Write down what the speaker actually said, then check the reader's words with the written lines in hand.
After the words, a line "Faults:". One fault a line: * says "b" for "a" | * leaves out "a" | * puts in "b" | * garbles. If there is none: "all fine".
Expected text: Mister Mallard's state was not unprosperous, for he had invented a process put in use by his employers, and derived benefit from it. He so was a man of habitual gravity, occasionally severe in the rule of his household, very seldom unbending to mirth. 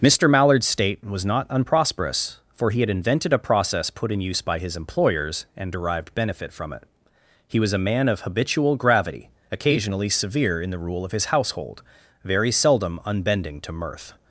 Mister Mallard's state was not unprosperous, for he had invented a process put in use by his employers, and derived benefit from it. He was a man of habitual gravity, occasionally severe in the rule of his household, very seldom unbending to mirth.
Faults:
* leaves out "so"